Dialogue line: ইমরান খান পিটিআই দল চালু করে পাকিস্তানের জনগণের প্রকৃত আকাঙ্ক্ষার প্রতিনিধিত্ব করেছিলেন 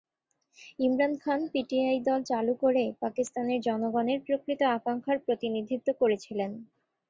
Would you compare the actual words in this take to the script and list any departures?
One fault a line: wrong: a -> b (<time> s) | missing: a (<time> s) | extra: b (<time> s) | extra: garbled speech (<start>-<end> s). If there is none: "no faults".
no faults